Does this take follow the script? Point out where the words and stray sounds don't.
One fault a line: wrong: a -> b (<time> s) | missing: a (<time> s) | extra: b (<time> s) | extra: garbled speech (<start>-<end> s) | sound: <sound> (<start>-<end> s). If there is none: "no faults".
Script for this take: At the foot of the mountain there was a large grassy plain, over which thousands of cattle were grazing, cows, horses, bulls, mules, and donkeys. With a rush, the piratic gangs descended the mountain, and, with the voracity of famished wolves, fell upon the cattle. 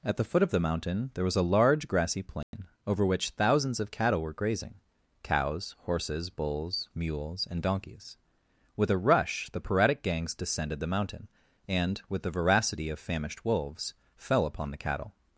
sound: dropout (2.4-2.5 s)